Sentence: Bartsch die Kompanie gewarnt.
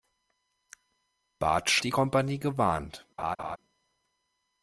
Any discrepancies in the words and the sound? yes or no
yes